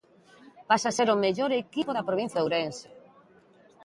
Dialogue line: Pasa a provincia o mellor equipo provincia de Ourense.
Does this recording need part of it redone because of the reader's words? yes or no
yes